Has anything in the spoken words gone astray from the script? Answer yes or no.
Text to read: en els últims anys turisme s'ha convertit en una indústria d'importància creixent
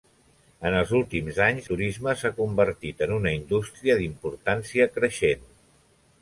no